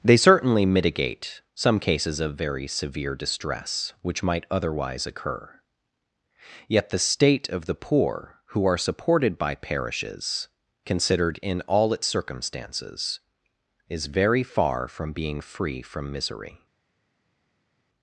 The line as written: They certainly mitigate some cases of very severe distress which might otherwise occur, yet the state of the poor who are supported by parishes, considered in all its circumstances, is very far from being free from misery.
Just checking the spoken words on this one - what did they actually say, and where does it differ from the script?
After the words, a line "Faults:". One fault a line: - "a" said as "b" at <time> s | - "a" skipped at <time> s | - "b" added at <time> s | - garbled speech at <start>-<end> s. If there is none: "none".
They certainly mitigate some cases of very severe distress which might otherwise occur, yet the state of the poor who are supported by parishes, considered in all its circumstances, is very far from being free from misery.
Faults:
none